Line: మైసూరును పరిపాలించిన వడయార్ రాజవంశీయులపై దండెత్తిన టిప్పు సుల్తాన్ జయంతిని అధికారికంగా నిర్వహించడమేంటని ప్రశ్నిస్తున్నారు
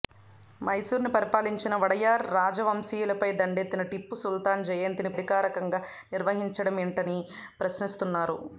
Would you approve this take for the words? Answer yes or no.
yes